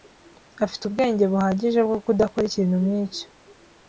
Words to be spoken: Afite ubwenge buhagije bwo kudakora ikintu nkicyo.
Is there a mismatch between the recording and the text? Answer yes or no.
no